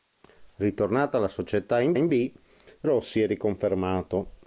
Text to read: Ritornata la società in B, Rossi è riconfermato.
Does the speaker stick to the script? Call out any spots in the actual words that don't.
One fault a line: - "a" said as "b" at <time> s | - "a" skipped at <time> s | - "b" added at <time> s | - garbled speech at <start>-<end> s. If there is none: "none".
- "in" added at 1.9 s